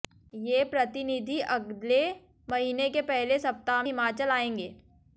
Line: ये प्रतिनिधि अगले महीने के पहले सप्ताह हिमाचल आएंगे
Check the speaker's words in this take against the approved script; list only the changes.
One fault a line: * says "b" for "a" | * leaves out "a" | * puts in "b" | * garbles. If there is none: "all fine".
all fine